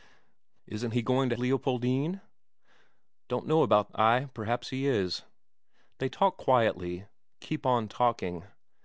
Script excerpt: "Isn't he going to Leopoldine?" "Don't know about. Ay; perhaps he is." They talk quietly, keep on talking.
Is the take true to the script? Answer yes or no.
yes